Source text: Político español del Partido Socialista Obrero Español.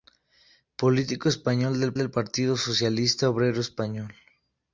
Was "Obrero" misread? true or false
false